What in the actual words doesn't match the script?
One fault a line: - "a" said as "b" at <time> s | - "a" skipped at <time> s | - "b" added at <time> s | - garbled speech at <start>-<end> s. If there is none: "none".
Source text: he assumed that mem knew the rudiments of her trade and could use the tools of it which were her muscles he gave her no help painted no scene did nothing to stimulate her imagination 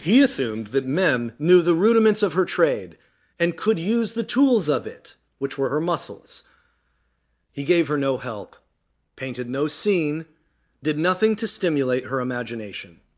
none